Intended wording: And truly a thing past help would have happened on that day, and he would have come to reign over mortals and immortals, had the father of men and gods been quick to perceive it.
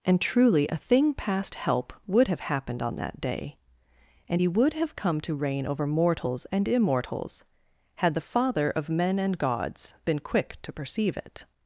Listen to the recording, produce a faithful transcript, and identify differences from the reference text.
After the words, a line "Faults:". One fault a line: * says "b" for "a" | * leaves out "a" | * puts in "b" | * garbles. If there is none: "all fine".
And truly a thing past help would have happened on that day, and he would have come to reign over mortals and immortals, had the father of men and gods been quick to perceive it.
Faults:
all fine